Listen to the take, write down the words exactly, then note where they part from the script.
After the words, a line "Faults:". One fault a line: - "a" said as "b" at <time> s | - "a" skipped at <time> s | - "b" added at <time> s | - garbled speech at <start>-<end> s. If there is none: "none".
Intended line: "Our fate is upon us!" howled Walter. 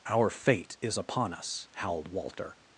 "Our fate is upon us!" howled Walter.
Faults:
none